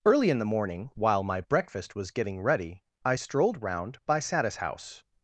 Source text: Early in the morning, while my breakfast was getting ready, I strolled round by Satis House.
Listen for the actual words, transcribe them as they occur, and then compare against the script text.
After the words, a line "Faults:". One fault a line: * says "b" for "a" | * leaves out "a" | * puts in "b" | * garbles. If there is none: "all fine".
Early in the morning, while my breakfast was getting ready, I strolled round by Satis House.
Faults:
all fine